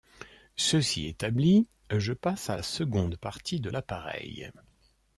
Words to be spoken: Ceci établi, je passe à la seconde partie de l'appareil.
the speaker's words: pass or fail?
pass